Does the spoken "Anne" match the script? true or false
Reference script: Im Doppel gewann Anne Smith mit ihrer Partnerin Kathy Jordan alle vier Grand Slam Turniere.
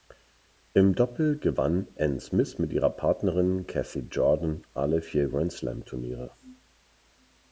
true